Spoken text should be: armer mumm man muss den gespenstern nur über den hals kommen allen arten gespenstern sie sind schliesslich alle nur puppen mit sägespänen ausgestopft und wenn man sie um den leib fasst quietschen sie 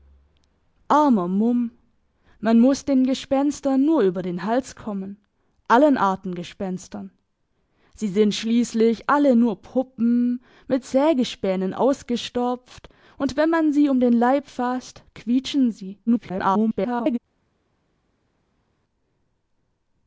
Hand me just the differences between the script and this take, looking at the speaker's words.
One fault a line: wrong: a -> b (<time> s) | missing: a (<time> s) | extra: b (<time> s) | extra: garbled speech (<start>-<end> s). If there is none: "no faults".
extra: garbled speech (16.1-17.2 s)